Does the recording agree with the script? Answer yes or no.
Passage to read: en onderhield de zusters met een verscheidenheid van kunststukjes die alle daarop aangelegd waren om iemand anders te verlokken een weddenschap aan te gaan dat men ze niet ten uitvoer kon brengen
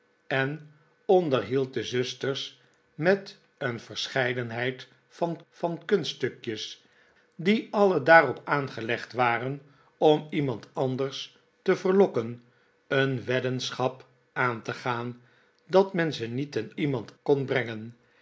no